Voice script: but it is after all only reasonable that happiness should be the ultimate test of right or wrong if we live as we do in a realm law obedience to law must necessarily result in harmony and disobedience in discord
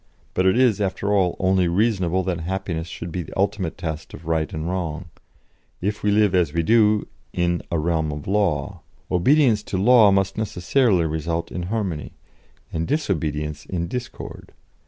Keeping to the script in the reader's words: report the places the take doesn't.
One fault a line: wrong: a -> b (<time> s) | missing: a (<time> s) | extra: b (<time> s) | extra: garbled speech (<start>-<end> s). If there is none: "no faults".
wrong: or -> and (4.5 s)
extra: of (8.1 s)